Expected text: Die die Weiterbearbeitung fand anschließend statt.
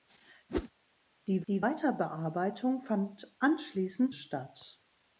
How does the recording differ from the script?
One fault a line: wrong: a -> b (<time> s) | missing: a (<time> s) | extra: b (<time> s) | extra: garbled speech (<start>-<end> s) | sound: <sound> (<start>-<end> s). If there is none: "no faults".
sound: whoosh (0.5-0.7 s)